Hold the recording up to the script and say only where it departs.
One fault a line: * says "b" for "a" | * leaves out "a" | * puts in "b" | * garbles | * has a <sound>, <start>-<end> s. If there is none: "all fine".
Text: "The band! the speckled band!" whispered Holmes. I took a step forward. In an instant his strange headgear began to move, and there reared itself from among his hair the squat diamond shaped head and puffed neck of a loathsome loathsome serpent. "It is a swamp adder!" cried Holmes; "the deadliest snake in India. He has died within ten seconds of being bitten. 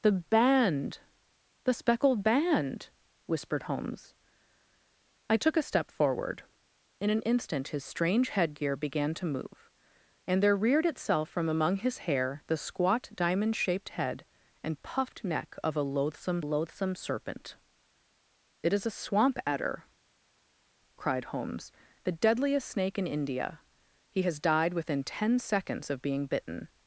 all fine